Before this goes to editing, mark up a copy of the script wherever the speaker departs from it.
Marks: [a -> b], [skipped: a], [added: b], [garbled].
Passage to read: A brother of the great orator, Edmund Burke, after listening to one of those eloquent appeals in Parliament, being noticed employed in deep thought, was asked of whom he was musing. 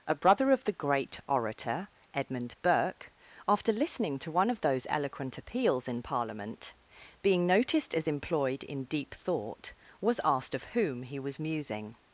A brother of the great orator, Edmund Burke, after listening to one of those eloquent appeals in Parliament, being noticed [added: as] employed in deep thought, was asked of whom he was musing.